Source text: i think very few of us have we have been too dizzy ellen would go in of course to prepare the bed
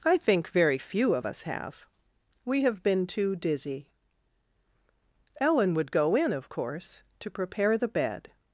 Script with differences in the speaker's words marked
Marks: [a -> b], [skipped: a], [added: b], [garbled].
i think very few of us have we have been too dizzy ellen would go in of course to prepare the bed